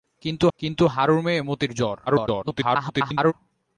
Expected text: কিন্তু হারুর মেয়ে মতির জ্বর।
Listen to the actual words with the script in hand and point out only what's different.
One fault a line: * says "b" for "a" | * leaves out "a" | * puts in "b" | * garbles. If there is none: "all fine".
* puts in "কিন্তু"
* garbles